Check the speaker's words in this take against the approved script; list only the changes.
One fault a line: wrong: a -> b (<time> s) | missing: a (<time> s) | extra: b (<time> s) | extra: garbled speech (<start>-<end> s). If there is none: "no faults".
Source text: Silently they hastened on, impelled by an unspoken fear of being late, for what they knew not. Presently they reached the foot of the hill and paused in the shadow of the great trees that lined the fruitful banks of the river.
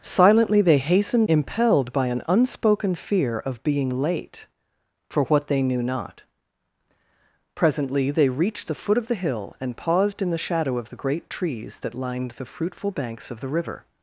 missing: on (1.3 s)